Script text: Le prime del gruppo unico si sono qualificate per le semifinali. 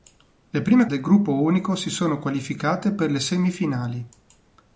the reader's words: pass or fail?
pass